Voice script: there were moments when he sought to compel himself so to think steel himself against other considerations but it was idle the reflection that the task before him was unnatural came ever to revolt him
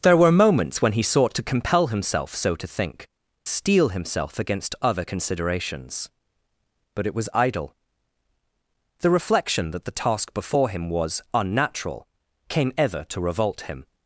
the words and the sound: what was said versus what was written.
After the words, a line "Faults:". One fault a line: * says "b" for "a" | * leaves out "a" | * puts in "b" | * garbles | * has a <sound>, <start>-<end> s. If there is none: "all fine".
there were moments when he sought to compel himself so to think steel himself against other considerations but it was idle the reflection that the task before him was unnatural came ever to revolt him
Faults:
all fine